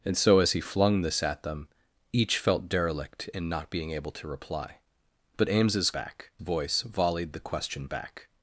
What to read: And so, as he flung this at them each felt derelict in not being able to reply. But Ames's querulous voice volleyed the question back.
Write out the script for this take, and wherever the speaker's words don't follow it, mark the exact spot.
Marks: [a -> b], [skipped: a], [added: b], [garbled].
And so, as he flung this at them each felt derelict in not being able to reply. But Ames's [querulous -> back] voice volleyed the question back.